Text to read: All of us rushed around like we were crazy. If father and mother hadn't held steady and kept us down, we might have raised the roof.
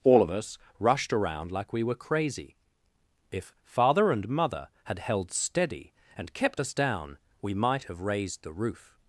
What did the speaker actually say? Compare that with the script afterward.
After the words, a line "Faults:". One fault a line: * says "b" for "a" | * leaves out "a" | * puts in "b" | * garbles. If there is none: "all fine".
All of us rushed around like we were crazy. If father and mother had held steady and kept us down, we might have raised the roof.
Faults:
* says "had" for "hadn't"